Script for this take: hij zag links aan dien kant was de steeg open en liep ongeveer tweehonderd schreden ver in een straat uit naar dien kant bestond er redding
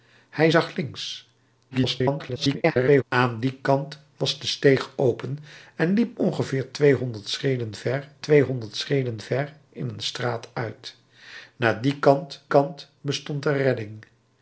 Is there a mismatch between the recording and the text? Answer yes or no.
yes